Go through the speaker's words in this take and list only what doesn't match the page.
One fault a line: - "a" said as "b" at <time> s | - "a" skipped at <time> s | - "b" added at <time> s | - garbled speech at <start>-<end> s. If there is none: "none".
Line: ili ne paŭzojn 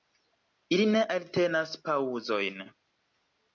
- "eltenas" added at 1.1 s